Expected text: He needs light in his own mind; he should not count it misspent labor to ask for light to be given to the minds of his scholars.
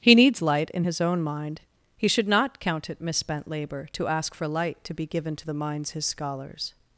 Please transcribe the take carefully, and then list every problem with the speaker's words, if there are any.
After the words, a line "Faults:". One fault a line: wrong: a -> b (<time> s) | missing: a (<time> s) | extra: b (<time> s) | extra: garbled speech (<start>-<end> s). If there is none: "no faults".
He needs light in his own mind; he should not count it misspent labor to ask for light to be given to the minds his scholars.
Faults:
missing: of (5.9 s)